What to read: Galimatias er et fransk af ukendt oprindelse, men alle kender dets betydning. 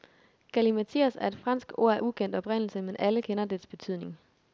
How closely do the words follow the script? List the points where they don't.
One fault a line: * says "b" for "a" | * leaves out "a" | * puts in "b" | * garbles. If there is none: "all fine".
* puts in "ord"